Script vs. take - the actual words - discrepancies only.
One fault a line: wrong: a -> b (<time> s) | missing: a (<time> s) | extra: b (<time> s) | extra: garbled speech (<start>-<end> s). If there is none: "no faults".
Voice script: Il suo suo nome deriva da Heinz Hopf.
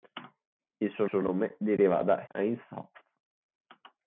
no faults